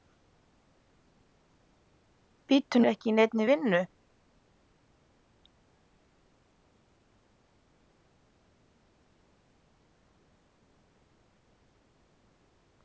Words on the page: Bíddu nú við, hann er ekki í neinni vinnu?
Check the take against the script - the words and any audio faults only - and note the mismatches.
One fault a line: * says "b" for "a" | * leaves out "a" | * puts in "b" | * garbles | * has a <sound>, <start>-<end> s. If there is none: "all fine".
* leaves out "nú við hann"